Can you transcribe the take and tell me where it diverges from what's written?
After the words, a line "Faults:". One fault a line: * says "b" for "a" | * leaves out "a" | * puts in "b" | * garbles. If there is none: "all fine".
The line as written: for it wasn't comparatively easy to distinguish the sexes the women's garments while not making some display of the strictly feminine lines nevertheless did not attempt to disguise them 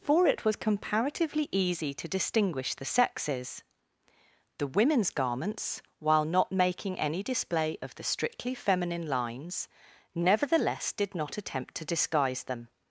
for it was comparatively easy to distinguish the sexes the women's garments while not making any display of the strictly feminine lines nevertheless did not attempt to disguise them
Faults:
* says "was" for "wasn't"
* says "any" for "some"